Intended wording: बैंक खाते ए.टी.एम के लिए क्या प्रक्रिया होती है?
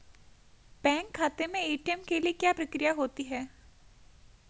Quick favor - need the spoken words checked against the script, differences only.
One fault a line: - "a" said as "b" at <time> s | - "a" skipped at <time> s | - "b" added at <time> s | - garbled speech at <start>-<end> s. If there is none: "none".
- "में" added at 1.5 s